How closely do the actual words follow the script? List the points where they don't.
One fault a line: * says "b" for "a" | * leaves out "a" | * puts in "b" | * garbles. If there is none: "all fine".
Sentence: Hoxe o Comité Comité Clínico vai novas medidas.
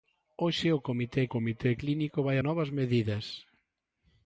all fine